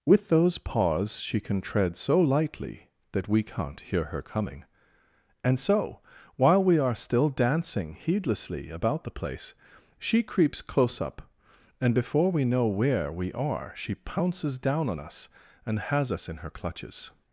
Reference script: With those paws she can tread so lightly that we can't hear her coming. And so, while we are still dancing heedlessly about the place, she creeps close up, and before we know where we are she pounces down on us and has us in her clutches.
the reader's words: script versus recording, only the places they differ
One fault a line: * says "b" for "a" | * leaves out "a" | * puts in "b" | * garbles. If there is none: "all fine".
all fine